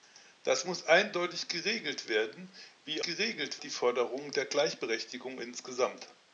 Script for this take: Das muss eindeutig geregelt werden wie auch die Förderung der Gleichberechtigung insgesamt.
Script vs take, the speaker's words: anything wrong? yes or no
yes